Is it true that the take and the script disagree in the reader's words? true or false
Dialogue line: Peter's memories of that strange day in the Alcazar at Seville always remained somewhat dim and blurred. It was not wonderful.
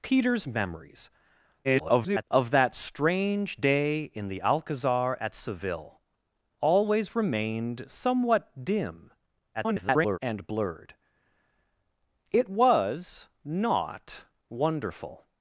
true